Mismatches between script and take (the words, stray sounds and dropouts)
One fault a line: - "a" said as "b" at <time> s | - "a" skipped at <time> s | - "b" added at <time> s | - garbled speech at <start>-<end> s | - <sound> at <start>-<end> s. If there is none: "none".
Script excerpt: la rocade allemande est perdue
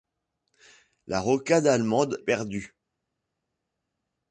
- "est" skipped at 2.2 s